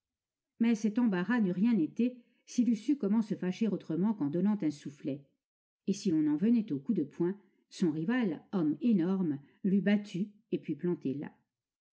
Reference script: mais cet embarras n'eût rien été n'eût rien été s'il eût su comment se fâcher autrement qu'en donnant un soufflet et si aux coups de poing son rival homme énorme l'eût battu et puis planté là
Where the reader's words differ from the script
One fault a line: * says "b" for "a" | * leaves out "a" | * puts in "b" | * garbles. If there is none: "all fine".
* leaves out "n'eût rien été"
* puts in "l'on en venait"